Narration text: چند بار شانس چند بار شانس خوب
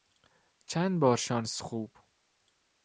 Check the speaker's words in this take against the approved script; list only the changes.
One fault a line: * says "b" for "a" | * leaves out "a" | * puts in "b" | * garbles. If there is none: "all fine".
* leaves out "چند بار شانس"